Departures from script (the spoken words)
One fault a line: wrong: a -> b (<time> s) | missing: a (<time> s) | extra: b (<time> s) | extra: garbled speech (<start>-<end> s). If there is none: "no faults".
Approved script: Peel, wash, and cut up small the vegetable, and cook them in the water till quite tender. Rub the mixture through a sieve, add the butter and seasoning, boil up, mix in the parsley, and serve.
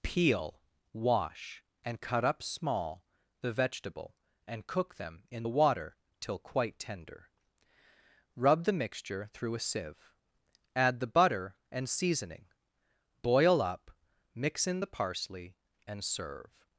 no faults